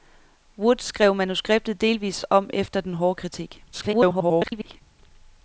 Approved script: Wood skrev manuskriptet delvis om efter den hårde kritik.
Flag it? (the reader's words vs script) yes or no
yes